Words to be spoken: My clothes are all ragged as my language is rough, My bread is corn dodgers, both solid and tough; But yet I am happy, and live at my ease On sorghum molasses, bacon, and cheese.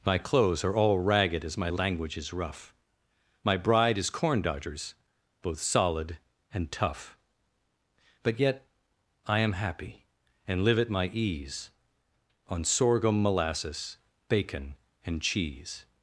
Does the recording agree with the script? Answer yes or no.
no